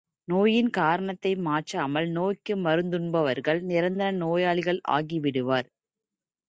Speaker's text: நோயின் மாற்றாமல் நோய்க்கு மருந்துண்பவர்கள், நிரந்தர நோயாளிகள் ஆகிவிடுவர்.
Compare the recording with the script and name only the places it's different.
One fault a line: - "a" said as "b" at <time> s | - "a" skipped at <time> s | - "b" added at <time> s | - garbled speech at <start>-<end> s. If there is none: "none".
- "காரணத்தை" added at 0.7 s